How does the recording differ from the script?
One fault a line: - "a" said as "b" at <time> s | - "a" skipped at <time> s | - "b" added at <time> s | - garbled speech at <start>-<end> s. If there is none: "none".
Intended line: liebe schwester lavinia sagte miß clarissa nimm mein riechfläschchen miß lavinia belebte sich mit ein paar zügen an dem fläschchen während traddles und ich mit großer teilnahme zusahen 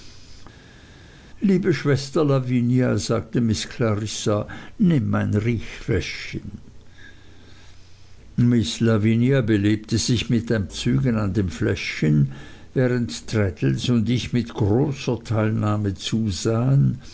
- "paar" skipped at 10.7 s